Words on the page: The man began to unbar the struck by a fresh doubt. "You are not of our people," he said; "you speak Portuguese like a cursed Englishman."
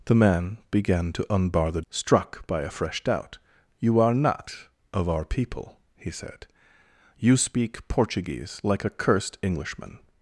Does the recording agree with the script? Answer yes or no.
yes